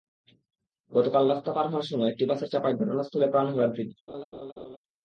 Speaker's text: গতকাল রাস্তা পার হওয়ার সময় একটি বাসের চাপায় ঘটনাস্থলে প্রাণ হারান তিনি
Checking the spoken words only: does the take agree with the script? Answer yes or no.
yes